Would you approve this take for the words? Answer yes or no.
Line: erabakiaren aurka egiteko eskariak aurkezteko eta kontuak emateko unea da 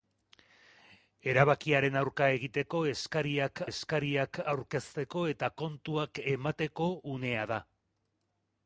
no